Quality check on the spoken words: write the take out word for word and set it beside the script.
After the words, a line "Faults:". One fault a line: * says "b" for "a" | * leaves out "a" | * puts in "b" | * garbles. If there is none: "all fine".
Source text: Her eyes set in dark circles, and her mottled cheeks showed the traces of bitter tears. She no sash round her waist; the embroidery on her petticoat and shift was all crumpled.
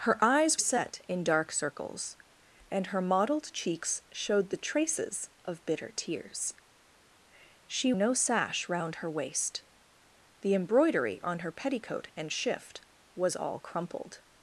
Her eyes set in dark circles, and her mottled cheeks showed the traces of bitter tears. She no sash round her waist; the embroidery on her petticoat and shift was all crumpled.
Faults:
all fine